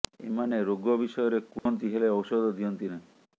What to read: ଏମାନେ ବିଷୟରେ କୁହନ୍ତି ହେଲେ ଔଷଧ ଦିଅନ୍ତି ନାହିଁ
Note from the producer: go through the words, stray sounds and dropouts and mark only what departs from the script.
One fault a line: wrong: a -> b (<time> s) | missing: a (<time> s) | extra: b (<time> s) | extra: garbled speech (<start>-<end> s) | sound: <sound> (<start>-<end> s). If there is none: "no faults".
extra: ରୋଗ (0.6 s)
sound: dropout (1.6-1.7 s)